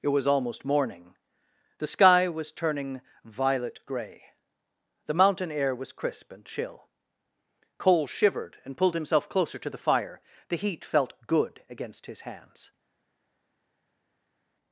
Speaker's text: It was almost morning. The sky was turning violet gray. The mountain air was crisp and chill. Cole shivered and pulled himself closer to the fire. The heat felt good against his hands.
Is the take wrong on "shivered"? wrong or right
right